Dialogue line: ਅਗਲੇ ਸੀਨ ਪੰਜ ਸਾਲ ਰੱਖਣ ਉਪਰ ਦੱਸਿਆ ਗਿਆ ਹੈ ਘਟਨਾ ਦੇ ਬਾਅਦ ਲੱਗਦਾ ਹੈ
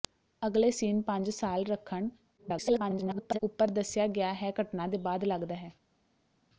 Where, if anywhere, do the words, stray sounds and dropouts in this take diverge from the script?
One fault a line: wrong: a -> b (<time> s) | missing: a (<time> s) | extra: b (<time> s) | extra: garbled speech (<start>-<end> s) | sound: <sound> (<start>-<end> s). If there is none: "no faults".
extra: garbled speech (2.4-3.4 s)